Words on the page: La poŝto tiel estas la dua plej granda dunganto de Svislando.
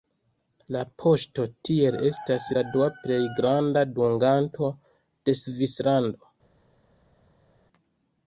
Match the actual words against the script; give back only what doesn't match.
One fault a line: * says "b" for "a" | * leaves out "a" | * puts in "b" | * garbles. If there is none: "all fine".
all fine